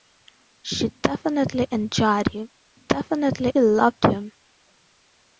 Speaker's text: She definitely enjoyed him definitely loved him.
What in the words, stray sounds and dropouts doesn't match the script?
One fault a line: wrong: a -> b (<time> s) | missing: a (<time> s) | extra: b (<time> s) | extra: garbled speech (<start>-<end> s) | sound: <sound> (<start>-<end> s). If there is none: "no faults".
no faults